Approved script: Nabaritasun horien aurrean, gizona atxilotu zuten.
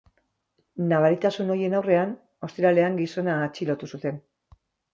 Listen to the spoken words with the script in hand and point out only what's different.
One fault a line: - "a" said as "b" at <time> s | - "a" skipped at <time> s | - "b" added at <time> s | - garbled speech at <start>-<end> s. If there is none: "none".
- "ostiralean" added at 2.5 s